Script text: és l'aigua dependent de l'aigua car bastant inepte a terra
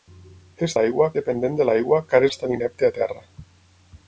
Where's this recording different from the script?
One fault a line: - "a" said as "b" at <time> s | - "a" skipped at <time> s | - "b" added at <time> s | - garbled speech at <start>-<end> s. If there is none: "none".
none